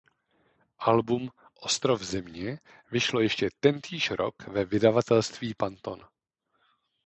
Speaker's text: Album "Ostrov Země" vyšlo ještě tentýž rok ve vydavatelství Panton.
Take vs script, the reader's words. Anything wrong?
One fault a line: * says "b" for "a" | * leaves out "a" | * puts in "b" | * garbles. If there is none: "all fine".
all fine